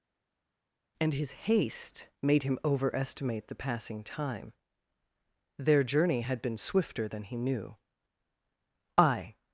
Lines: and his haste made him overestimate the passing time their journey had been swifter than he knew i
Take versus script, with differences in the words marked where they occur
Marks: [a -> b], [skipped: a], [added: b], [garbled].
and his haste made him overestimate the passing time their journey had been swifter than he knew i